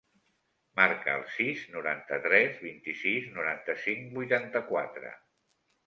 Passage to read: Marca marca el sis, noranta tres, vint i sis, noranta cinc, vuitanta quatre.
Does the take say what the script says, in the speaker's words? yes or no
no